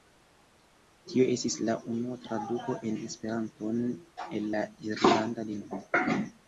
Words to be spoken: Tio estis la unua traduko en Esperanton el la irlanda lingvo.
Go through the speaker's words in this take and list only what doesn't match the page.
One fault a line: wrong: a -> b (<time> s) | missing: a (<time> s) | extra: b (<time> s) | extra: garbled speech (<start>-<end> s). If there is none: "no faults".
no faults